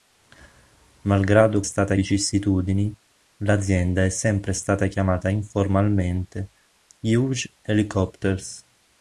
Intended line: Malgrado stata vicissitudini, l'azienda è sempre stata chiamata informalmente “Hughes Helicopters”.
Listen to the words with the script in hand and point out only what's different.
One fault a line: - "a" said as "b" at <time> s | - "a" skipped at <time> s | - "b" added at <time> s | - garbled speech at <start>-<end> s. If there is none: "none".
none